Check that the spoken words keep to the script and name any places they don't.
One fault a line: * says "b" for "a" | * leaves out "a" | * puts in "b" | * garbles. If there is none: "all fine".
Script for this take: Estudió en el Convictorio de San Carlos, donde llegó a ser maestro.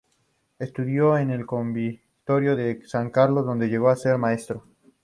all fine